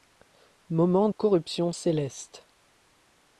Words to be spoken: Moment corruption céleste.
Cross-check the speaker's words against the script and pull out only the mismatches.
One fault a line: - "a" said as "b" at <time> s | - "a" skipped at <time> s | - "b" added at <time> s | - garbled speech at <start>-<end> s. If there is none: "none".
none